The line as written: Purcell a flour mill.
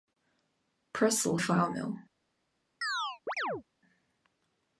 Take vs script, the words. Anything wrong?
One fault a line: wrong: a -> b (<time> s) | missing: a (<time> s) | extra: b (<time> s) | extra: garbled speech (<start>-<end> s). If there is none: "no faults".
no faults